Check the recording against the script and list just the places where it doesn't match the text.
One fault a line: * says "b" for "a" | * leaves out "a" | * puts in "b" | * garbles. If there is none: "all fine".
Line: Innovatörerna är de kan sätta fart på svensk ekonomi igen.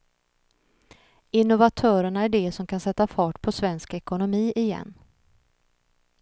* puts in "som"